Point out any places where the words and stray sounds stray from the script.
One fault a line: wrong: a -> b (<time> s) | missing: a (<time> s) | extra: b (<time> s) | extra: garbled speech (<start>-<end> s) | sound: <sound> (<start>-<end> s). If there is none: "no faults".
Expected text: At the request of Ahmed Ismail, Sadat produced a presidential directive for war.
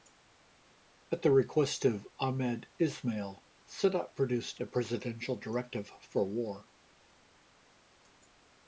no faults